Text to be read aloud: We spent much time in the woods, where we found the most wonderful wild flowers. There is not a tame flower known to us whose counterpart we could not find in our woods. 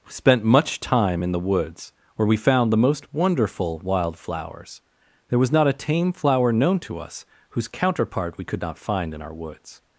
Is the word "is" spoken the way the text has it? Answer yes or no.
no